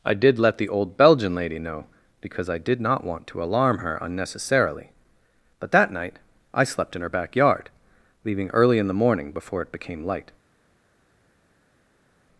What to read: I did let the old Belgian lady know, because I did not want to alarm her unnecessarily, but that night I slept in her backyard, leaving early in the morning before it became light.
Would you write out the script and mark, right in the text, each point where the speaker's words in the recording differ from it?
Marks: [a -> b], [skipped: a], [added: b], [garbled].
I did let the old Belgian lady know, because I did not want to alarm her unnecessarily, but that night I slept in her backyard, leaving early in the morning before it became light.